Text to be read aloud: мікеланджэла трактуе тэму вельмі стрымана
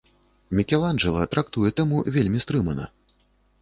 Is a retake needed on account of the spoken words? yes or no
no